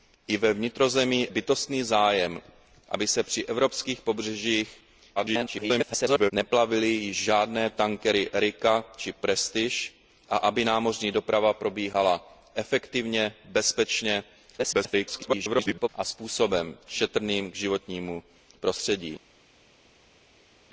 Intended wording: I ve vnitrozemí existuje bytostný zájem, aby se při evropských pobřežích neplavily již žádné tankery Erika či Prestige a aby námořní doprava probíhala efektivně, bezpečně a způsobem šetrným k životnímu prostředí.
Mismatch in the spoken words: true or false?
true